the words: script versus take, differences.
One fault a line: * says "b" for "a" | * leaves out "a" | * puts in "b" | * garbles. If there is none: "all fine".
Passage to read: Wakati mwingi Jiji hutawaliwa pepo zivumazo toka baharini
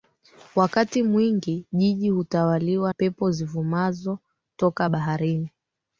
all fine